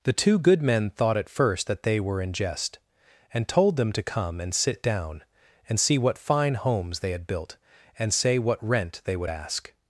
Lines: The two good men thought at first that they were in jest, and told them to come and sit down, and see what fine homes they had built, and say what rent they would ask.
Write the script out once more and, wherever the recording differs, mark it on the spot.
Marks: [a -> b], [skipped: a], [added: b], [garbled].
The two good men thought at first that they were in jest, and told them to come and sit down, and see what fine homes they had built, and say what rent they would ask.